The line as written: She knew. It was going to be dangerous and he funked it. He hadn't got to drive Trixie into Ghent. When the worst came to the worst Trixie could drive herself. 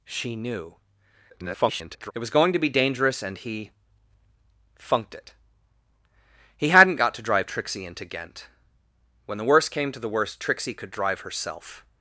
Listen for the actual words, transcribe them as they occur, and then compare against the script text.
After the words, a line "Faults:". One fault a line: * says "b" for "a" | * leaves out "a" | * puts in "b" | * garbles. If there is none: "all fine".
She knew. [garbled] It was going to be dangerous and he funked it. He hadn't got to drive Trixie into Ghent. When the worst came to the worst Trixie could drive herself.
Faults:
* garbles